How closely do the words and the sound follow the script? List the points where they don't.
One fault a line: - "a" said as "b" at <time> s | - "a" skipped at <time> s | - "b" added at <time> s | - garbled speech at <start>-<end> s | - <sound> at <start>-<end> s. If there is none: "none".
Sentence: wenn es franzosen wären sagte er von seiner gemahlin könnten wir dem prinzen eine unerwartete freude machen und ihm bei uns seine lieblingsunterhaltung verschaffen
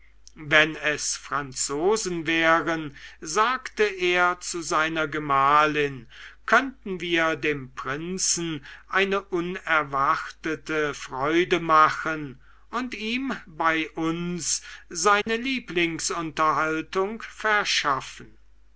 - "von" said as "zu" at 4.4 s
- dropout at 15.2-15.3 s